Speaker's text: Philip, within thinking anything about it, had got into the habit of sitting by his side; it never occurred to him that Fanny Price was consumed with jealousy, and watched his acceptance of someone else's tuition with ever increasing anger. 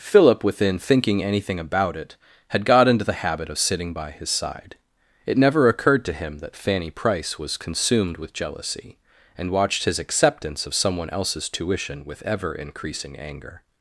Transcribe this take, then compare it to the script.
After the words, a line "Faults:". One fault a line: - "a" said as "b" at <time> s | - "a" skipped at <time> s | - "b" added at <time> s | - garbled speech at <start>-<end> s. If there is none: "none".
Philip, within thinking anything about it, had got into the habit of sitting by his side; it never occurred to him that Fanny Price was consumed with jealousy, and watched his acceptance of someone else's tuition with ever increasing anger.
Faults:
none